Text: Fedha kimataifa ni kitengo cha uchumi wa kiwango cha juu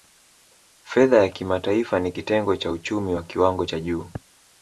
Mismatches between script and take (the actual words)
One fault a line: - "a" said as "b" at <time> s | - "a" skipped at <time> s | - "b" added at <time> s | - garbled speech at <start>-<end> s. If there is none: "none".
- "ya" added at 1.2 s